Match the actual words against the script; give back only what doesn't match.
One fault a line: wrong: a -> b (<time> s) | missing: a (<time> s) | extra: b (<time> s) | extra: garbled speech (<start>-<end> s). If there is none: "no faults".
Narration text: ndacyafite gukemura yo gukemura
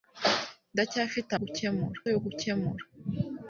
no faults